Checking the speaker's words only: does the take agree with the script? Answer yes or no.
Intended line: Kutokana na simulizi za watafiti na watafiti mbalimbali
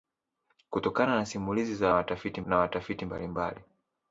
yes